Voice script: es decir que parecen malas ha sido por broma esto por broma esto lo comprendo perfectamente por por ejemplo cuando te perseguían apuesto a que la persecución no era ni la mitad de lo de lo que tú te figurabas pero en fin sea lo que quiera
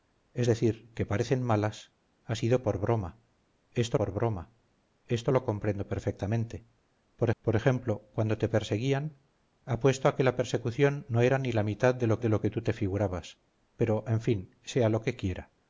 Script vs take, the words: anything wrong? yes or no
no